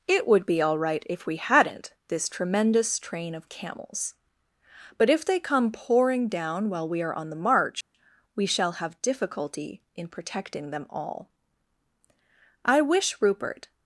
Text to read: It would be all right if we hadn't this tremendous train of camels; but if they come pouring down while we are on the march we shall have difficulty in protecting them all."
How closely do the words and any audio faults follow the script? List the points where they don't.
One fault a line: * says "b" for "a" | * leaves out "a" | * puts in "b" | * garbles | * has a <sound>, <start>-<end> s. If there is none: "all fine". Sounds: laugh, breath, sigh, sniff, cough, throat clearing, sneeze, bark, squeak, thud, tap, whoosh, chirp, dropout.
* has a dropout, 7.8-7.9 s
* puts in "I wish Rupert"